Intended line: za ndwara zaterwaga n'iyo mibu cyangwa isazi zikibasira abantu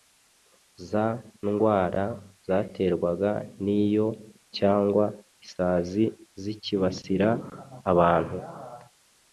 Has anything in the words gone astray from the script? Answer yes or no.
yes